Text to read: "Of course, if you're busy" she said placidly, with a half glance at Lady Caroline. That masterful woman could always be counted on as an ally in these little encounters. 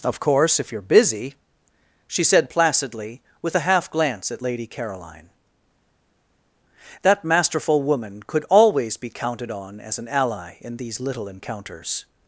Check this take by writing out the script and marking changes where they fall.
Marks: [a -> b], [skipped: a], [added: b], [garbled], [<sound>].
"Of course, if you're busy" she said placidly, with a half glance at Lady Caroline. That masterful woman could always be counted on as an ally in these little encounters.